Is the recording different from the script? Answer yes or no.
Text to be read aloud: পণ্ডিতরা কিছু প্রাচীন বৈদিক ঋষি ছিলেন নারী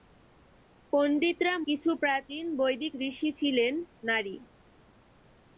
no